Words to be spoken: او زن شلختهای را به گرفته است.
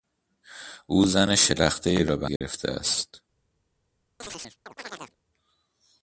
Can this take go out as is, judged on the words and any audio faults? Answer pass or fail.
fail